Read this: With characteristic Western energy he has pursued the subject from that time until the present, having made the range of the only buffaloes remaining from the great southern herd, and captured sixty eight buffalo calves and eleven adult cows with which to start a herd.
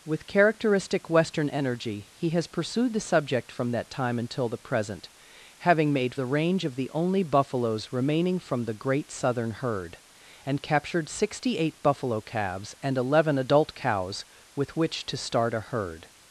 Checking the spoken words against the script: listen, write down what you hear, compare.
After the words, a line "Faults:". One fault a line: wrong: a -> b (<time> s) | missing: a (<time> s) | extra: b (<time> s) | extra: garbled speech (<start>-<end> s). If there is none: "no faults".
With characteristic Western energy he has pursued the subject from that time until the present, having made the range of the only buffaloes remaining from the great southern herd, and captured sixty eight buffalo calves and eleven adult cows with which to start a herd.
Faults:
no faults